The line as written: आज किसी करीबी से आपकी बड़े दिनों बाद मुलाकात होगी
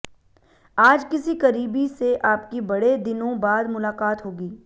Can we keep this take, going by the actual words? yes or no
yes